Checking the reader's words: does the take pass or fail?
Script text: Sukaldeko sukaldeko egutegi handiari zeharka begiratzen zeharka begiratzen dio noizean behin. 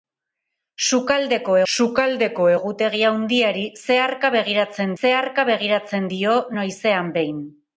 pass